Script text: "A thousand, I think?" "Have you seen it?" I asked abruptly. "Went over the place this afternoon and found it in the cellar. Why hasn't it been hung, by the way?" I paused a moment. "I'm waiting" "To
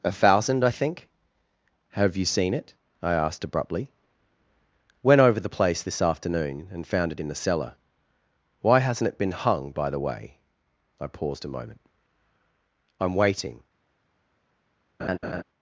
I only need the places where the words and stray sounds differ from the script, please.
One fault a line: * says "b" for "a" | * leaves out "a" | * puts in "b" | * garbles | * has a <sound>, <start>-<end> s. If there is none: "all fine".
* leaves out "To"
* has a laugh, 15.0-15.4 s